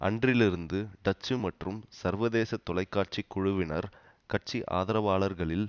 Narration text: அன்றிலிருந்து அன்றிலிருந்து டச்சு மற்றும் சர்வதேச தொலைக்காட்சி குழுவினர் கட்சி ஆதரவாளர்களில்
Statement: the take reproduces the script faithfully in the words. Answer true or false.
false